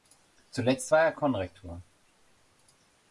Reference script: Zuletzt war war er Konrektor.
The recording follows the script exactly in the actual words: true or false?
false